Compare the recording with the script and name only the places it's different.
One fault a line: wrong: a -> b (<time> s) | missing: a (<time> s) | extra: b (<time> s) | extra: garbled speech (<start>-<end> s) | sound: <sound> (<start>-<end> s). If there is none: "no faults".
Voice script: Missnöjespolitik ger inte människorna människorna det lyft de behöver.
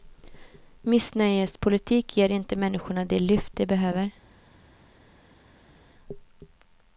missing: människorna (3.0 s)